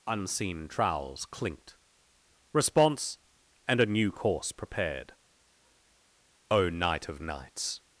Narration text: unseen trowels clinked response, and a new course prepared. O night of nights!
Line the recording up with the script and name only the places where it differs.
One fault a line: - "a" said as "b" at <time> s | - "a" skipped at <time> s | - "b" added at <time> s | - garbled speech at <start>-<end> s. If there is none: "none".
none